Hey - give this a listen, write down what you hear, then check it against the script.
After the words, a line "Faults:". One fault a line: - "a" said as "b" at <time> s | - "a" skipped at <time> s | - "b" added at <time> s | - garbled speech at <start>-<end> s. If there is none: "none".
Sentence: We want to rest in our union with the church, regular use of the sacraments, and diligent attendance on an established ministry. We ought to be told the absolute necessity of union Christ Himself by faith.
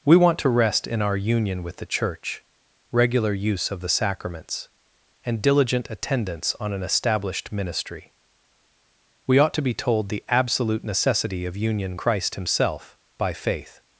We want to rest in our union with the church, regular use of the sacraments, and diligent attendance on an established ministry. We ought to be told the absolute necessity of union Christ Himself by faith.
Faults:
none